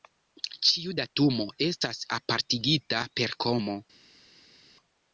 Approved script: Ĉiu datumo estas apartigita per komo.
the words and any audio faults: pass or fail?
pass